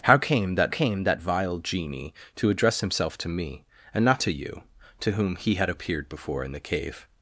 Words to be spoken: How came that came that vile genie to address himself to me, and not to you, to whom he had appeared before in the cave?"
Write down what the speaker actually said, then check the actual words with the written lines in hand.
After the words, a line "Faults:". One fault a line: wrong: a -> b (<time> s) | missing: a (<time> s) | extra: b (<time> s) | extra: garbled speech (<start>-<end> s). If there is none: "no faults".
How came that came that vile genie to address himself to me, and not to you, to whom he had appeared before in the cave?"
Faults:
no faults